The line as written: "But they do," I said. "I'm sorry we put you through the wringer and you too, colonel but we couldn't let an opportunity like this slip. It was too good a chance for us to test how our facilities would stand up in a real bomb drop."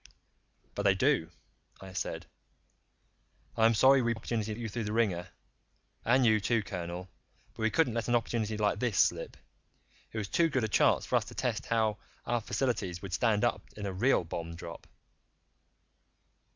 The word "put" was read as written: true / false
false